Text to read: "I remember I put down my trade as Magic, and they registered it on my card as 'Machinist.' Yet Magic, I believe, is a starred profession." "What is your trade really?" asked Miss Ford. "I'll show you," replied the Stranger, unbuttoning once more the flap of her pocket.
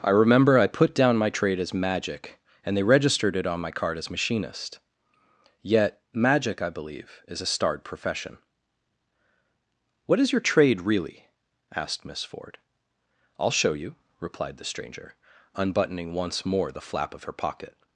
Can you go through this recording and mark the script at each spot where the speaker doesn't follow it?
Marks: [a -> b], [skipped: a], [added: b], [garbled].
"I remember I put down my trade as Magic, and they registered it on my card as 'Machinist.' Yet Magic, I believe, is a starred profession." "What is your trade really?" asked Miss Ford. "I'll show you," replied the Stranger, unbuttoning once more the flap of her pocket.